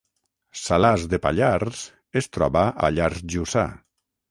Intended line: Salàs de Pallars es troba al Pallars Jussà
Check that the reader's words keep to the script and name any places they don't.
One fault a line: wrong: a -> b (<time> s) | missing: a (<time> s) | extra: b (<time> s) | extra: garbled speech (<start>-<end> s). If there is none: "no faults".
missing: al (2.7 s)